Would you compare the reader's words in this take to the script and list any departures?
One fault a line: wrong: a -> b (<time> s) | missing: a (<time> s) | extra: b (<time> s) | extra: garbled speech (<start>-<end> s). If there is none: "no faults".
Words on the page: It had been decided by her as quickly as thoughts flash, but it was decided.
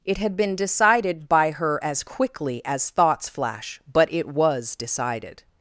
no faults